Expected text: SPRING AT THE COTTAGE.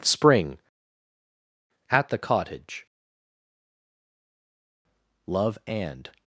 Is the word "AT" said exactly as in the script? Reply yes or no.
yes